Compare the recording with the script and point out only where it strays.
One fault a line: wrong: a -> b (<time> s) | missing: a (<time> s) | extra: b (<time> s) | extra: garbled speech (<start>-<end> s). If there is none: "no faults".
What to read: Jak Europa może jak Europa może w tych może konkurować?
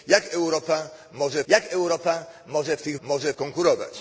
no faults